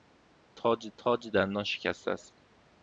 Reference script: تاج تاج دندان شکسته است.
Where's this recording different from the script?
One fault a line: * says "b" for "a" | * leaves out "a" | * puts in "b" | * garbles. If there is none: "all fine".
all fine